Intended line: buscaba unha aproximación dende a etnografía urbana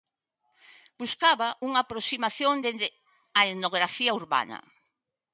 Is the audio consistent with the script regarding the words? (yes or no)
yes